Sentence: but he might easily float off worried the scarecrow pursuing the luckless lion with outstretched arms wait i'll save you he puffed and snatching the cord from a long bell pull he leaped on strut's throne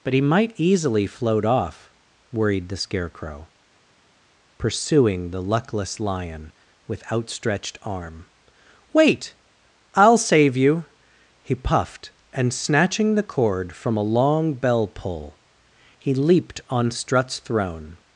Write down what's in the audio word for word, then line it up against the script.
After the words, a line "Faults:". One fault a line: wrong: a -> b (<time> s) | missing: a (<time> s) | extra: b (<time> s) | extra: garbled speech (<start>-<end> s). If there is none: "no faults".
but he might easily float off worried the scarecrow pursuing the luckless lion with outstretched arm wait i'll save you he puffed and snatching the cord from a long bell pull he leaped on strut's throne
Faults:
wrong: arms -> arm (7.8 s)